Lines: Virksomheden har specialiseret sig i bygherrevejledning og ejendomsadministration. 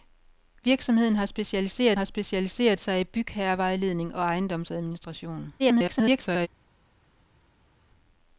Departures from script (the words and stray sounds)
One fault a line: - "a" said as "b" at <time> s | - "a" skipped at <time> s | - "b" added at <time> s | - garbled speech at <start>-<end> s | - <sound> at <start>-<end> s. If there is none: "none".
- "har specialiseret" added at 1.9 s
- garbled speech at 5.6-6.5 s